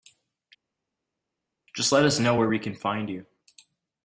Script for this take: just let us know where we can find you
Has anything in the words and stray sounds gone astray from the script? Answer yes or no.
no